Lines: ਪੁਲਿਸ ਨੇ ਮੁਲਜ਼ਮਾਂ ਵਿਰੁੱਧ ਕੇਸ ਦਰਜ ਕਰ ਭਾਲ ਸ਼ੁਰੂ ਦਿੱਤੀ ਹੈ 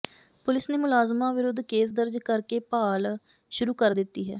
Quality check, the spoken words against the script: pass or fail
fail